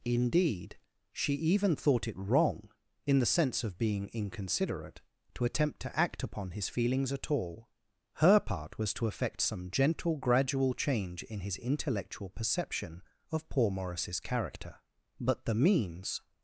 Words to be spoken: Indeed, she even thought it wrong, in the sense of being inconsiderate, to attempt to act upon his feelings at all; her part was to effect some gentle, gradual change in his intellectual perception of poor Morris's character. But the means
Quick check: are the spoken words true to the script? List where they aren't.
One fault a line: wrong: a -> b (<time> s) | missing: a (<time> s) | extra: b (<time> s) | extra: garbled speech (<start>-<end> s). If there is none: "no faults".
no faults